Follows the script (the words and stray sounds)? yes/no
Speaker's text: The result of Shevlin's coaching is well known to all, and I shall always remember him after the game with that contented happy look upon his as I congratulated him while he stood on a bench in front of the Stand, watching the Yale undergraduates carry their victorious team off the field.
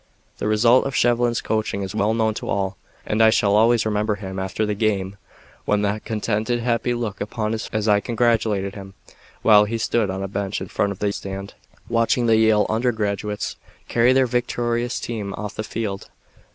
yes